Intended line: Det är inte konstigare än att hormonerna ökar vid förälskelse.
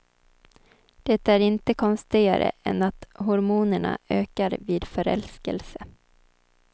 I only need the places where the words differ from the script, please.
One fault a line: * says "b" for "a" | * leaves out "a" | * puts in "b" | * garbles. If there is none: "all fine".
all fine